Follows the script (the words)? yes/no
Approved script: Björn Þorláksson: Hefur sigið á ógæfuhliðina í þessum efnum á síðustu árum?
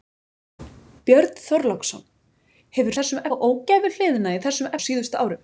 no